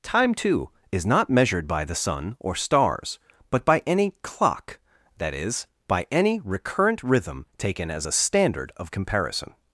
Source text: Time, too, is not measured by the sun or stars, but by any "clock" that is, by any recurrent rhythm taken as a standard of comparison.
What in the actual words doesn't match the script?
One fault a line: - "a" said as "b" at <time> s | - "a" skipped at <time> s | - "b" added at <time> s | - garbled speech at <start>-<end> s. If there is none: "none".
none